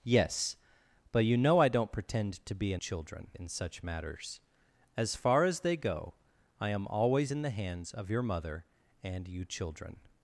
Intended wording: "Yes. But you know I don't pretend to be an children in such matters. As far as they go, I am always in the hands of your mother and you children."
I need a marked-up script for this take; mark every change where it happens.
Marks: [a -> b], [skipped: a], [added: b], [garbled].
"Yes. But you know I don't pretend to be an children in such matters. As far as they go, I am always in the hands of your mother and you children."